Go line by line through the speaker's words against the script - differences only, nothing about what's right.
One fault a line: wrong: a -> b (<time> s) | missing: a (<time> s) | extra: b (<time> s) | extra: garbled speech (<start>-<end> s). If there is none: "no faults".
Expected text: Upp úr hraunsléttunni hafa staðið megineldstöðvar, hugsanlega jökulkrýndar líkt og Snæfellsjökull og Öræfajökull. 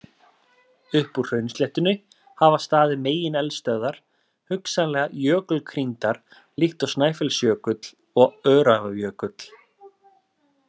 no faults